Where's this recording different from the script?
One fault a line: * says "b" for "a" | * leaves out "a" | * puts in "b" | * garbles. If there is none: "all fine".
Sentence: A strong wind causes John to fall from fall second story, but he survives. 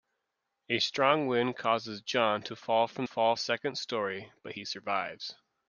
all fine